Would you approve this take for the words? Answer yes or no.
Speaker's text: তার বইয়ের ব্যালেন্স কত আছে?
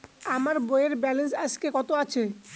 no